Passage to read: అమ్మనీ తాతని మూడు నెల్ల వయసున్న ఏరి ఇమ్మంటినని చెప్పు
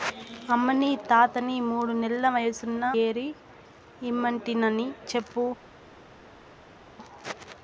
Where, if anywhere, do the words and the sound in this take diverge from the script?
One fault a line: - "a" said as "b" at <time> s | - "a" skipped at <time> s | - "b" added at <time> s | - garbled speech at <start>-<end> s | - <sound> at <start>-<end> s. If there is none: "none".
none